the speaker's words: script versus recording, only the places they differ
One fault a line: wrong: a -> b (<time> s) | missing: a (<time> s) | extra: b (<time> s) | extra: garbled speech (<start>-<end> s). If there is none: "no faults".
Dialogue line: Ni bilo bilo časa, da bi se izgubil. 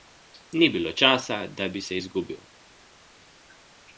missing: bilo (0.9 s)